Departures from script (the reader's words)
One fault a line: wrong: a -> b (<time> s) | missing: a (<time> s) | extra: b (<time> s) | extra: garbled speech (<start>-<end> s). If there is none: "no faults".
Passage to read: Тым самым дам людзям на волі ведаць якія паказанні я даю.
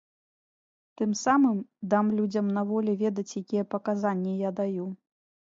no faults